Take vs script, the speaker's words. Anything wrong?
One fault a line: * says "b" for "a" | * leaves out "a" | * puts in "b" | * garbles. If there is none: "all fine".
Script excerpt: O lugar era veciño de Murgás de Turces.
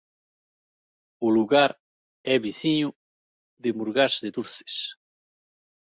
* says "é" for "era"